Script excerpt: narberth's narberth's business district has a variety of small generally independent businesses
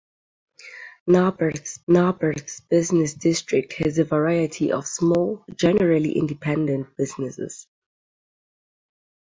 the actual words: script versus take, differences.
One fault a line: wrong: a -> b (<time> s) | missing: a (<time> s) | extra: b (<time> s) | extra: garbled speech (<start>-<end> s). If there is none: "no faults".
no faults